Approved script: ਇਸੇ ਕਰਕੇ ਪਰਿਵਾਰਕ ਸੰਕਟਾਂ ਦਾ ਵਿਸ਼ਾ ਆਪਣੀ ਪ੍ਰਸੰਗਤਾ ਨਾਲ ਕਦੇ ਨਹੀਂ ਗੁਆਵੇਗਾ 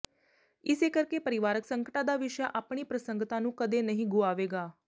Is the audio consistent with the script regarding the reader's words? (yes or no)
no